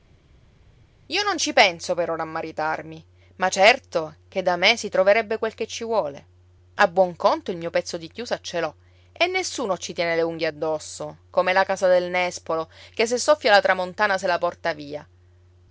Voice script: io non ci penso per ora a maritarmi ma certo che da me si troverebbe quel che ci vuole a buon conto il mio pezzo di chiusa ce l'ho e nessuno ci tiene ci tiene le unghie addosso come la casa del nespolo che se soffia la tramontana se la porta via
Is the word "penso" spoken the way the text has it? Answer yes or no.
yes